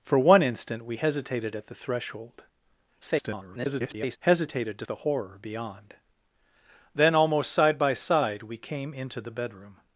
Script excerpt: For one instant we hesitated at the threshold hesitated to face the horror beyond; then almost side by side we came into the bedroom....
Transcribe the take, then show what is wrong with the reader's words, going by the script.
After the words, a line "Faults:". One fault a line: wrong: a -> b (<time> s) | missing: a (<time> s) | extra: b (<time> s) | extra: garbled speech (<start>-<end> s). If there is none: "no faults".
For one instant we hesitated at the threshold [garbled] hesitated to the horror beyond; then almost side by side we came into the bedroom....
Faults:
extra: garbled speech (3.0-4.2 s)
missing: face (4.9 s)